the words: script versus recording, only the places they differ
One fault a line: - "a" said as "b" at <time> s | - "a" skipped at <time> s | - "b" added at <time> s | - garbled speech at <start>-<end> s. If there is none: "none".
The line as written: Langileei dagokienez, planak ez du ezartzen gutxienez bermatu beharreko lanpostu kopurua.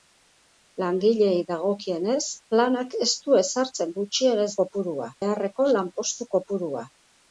- "bermatu" said as "kopurua" at 4.6 s